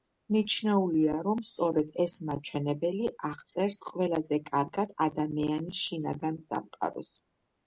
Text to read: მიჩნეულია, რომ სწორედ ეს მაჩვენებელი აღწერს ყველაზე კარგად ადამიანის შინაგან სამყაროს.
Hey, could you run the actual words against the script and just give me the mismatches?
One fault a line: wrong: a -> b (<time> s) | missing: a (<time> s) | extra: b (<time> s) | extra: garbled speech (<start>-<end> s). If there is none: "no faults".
no faults